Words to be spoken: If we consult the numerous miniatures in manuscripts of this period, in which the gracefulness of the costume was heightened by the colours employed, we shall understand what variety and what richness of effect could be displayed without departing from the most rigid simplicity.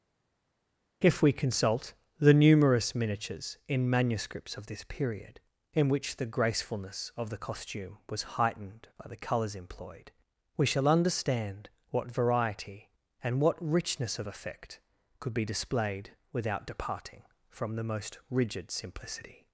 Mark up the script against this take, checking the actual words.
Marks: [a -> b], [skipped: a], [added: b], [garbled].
If we consult the numerous miniatures in manuscripts of this period, in which the gracefulness of the costume was heightened by the colours employed, we shall understand what variety and what richness of effect could be displayed without departing from the most rigid simplicity.